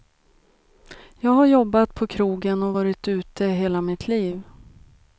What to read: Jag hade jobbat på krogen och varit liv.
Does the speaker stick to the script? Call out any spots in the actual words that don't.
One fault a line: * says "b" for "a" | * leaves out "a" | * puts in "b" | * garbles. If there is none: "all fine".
* says "har" for "hade"
* puts in "ute hela mitt"